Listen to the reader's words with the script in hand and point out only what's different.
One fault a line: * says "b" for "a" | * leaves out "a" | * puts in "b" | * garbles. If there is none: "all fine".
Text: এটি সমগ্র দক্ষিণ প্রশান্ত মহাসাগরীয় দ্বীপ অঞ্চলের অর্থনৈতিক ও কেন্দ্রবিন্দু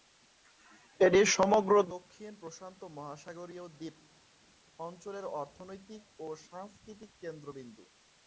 * puts in "সাংস্কৃতিক"